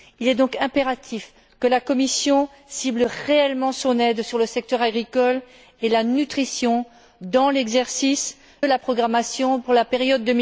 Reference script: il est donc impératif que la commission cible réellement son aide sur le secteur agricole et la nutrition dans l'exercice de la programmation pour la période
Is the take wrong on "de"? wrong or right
wrong